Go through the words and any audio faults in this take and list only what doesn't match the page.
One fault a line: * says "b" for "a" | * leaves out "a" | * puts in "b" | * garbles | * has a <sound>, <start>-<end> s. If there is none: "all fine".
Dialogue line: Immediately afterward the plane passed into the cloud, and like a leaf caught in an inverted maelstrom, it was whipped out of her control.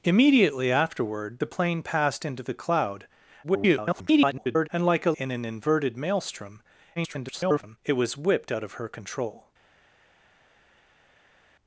* garbles
* leaves out "leaf caught"
* garbles